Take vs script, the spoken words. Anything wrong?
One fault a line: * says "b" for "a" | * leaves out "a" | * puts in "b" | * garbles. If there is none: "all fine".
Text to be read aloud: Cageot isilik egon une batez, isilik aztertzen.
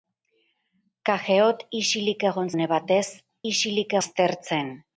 all fine